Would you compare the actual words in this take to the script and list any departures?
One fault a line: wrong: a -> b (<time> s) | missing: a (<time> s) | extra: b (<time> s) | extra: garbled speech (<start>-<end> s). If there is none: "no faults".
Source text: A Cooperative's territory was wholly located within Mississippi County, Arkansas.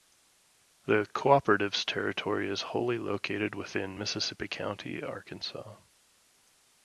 wrong: A -> The (0.9 s)
wrong: was -> is (2.5 s)